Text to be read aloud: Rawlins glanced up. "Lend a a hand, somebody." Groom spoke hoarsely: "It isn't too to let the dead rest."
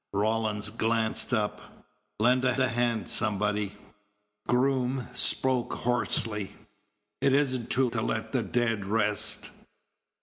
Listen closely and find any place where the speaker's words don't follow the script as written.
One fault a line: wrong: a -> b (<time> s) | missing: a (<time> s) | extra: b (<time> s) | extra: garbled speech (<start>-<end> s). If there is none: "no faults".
no faults